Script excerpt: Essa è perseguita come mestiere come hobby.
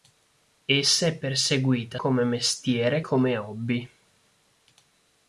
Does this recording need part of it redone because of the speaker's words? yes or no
no